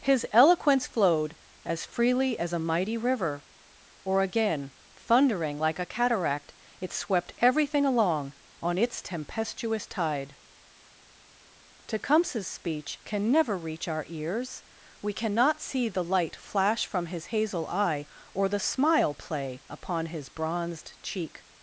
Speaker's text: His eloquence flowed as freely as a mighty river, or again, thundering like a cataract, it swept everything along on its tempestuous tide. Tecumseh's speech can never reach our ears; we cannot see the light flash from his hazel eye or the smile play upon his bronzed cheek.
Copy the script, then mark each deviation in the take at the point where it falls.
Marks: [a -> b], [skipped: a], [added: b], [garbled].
His eloquence flowed as freely as a mighty river, or again, thundering like a cataract, it swept everything along on its tempestuous tide. Tecumseh's speech can never reach our ears; we cannot see the light flash from his hazel eye or the smile play upon his bronzed cheek.